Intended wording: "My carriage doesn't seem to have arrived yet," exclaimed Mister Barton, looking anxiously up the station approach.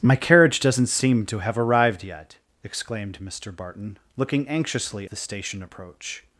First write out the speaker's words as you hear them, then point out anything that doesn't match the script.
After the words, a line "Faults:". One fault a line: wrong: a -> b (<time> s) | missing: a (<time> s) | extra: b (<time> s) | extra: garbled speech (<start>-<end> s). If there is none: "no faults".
"My carriage doesn't seem to have arrived yet," exclaimed Mister Barton, looking anxiously the station approach.
Faults:
missing: up (5.1 s)